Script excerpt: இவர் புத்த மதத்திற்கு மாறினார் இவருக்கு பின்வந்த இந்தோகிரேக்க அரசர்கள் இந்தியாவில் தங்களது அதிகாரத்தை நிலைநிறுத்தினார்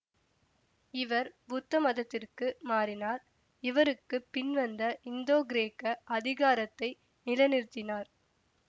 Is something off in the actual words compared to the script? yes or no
yes